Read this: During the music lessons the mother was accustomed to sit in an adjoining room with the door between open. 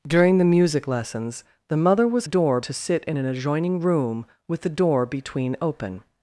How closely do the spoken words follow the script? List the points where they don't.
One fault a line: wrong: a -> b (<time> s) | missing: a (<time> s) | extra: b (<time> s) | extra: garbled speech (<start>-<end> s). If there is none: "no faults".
wrong: accustomed -> door (2.2 s)